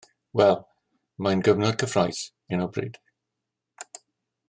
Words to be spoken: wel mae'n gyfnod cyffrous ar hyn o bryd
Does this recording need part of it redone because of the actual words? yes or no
yes